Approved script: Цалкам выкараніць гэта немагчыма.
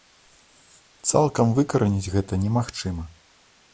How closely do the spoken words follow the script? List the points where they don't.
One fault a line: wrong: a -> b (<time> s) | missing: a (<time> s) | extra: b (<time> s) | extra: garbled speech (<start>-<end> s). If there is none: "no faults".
no faults